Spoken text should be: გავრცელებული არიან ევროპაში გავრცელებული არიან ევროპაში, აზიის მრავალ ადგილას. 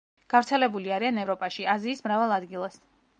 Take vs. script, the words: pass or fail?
fail